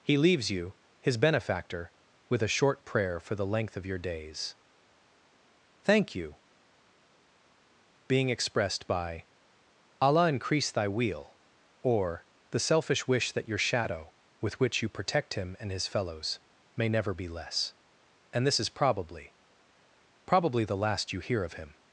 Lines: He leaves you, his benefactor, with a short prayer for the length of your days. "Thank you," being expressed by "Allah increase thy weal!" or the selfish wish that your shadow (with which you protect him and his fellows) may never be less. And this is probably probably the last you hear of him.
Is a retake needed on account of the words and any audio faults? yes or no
no